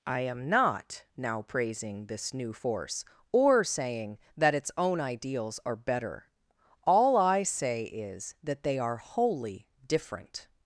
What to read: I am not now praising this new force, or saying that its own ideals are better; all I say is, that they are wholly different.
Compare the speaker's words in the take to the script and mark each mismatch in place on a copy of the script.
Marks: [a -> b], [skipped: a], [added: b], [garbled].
I am not now praising this new force, or saying that its own ideals are better; all I say is, that they are wholly different.